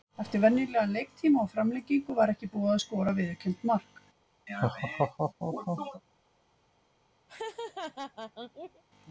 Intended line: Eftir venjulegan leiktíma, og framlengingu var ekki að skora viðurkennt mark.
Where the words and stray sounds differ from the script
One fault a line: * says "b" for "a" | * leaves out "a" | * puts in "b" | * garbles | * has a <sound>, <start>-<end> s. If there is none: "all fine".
* puts in "búið"
* has a laugh, 4.5-6.0 s
* has a laugh, 7.3-8.8 s